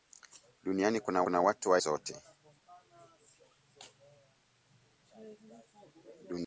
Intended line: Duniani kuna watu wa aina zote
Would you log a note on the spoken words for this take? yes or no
yes